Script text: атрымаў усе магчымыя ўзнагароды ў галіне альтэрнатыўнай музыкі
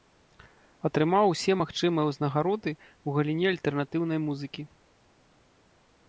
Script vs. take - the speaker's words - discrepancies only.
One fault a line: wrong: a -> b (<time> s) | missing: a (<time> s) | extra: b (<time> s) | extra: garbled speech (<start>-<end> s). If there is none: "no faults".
no faults